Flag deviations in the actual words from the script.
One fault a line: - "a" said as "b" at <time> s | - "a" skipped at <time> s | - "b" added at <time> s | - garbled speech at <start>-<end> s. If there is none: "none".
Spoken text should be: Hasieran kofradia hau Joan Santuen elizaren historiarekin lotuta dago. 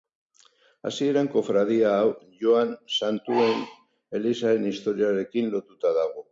none